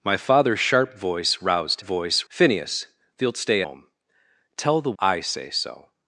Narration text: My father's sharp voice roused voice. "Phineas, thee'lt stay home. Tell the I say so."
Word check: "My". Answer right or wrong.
right